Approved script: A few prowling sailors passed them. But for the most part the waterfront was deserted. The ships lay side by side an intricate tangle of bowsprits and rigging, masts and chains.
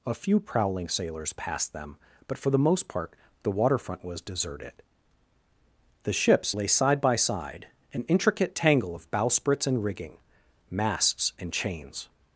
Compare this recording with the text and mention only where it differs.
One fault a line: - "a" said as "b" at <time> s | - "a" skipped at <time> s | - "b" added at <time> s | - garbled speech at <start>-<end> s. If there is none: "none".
none